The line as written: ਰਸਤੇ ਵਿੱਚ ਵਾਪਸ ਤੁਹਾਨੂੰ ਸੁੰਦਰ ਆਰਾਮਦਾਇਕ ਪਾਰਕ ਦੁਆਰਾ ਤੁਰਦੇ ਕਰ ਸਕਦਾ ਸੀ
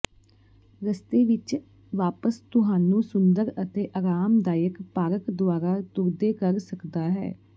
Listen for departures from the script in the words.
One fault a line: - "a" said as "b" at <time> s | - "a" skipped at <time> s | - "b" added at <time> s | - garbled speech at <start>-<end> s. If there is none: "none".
- "ਅਤੇ" added at 3.6 s
- "ਸੀ" said as "ਹੈ" at 7.1 s